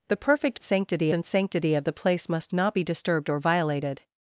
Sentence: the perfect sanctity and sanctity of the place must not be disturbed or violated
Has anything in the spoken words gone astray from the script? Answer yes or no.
no